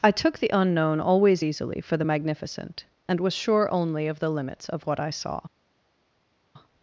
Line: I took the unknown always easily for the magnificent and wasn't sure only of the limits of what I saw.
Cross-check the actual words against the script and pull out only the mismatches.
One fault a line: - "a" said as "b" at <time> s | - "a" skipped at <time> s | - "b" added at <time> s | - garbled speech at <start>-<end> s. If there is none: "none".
- "wasn't" said as "was" at 3.2 s